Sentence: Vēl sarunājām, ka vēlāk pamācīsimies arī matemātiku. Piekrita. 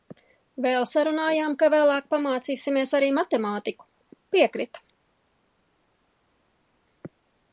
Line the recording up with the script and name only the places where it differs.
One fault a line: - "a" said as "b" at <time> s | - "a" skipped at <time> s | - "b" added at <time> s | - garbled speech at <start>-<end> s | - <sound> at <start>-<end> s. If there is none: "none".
none